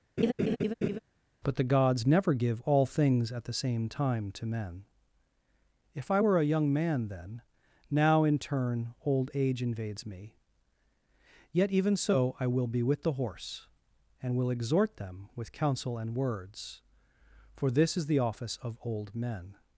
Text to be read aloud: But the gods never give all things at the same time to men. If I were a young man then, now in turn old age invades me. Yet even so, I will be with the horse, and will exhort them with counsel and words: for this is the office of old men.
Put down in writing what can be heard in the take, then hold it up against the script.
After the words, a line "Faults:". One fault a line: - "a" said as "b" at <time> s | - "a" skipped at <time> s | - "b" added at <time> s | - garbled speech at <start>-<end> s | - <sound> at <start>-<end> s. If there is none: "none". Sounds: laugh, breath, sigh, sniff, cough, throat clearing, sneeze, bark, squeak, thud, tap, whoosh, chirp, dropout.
But the gods never give all things at the same time to men. If I were a young man then, now in turn old age invades me. Yet even so, I will be with the horse, and will exhort them with counsel and words: for this is the office of old men.
Faults:
- laugh at 0.2-1.0 s